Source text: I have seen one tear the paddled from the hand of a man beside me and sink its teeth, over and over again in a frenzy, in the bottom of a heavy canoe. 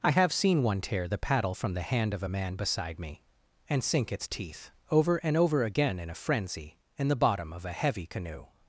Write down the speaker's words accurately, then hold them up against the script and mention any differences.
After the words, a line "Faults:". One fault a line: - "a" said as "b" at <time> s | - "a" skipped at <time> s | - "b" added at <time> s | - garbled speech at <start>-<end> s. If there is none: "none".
I have seen one tear the paddle from the hand of a man beside me and sink its teeth, over and over again in a frenzy, in the bottom of a heavy canoe.
Faults:
- "paddled" said as "paddle" at 1.2 s